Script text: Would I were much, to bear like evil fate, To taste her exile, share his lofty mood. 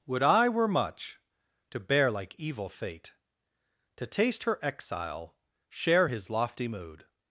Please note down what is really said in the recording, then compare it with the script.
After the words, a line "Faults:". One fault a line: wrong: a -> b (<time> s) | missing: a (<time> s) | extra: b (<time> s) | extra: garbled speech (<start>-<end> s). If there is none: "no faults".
Would I were much, to bear like evil fate, To taste her exile, share his lofty mood.
Faults:
no faults